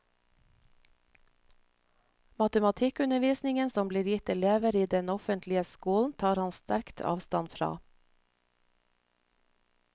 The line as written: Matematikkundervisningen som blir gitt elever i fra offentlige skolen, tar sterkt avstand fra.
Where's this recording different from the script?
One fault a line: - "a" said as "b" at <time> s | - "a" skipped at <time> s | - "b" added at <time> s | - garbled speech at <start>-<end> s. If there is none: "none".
- "fra" said as "den" at 4.9 s
- "han" added at 6.4 s